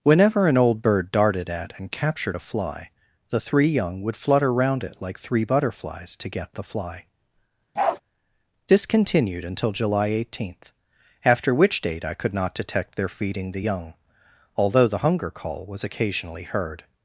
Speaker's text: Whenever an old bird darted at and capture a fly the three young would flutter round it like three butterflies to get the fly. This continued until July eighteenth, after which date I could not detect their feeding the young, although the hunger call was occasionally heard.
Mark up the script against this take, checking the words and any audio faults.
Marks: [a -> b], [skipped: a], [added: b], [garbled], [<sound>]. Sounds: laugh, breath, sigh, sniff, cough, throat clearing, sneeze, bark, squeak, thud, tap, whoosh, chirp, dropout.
Whenever an old bird darted at and [capture -> captured] a fly the three young would flutter round it like three butterflies to get the fly. [bark] This continued until July eighteenth, after which date I could not detect their feeding the young, although the hunger call was occasionally heard.